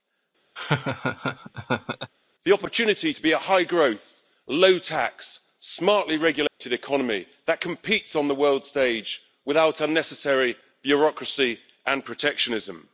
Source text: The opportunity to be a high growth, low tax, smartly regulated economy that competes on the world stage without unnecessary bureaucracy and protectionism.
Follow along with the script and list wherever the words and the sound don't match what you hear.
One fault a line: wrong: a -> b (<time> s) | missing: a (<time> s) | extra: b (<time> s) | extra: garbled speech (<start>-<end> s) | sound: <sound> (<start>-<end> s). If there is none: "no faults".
sound: laugh (0.6-2.1 s)
sound: dropout (6.5-6.6 s)